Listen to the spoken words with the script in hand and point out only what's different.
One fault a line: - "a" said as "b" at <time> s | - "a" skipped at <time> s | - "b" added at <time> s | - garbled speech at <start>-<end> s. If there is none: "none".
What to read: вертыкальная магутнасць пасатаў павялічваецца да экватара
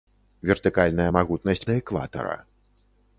- "пасатаў павялічваецца" skipped at 1.7 s